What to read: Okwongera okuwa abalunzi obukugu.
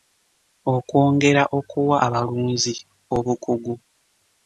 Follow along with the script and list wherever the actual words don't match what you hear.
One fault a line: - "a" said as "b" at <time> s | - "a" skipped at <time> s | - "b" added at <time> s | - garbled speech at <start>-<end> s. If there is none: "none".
none